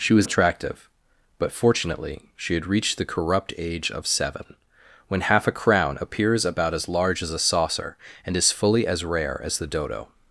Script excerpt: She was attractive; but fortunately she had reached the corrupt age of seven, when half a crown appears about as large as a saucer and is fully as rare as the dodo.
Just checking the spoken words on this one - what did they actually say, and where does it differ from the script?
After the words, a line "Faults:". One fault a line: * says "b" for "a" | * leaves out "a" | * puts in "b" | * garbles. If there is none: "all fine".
She was attractive; but fortunately she had reached the corrupt age of seven, when half a crown appears about as large as a saucer and is fully as rare as the dodo.
Faults:
all fine